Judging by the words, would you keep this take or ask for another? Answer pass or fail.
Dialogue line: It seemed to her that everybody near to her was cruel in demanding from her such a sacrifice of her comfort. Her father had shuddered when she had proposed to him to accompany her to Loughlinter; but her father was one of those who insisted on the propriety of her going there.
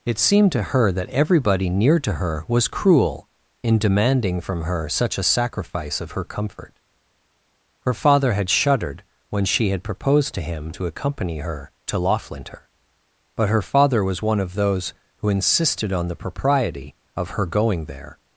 pass